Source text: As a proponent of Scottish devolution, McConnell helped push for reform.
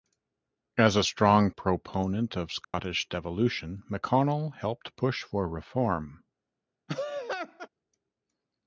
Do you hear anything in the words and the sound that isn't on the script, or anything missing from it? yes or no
yes